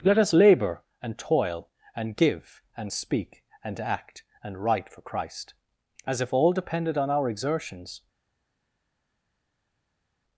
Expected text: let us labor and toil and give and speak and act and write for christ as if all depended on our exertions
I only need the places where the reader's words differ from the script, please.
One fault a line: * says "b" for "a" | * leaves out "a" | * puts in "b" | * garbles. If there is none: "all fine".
all fine